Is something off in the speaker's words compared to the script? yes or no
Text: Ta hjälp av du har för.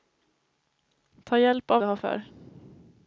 no